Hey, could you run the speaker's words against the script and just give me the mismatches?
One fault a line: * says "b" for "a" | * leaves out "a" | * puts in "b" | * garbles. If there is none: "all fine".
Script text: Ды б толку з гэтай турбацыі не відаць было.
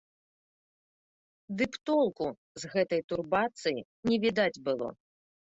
all fine